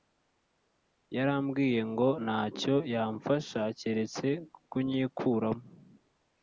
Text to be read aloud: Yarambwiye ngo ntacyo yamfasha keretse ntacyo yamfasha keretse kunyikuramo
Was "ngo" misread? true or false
false